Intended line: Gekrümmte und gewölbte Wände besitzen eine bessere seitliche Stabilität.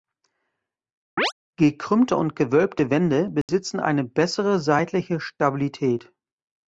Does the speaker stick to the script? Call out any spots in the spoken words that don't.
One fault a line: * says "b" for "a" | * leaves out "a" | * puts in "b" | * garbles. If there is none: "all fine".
all fine